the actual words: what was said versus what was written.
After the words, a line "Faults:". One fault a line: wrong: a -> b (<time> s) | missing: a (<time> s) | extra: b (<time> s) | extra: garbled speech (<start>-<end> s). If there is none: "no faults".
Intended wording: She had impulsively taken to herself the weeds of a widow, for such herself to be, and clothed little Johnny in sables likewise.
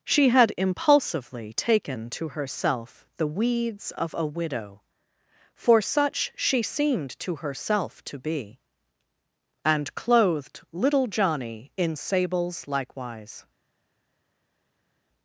She had impulsively taken to herself the weeds of a widow, for such she seemed to herself to be, and clothed little Johnny in sables likewise.
Faults:
extra: she seemed to (6.3 s)